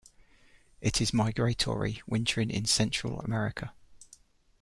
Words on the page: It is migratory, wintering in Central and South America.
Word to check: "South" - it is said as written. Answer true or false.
false